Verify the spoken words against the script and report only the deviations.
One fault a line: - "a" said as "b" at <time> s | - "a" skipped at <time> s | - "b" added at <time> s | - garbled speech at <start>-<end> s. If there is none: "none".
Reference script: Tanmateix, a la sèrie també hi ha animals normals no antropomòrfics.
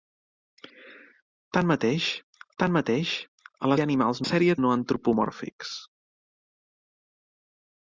- "tanmateix" added at 2.6 s
- "sèrie també" skipped at 3.8 s
- "normals" said as "sèrie" at 4.3 s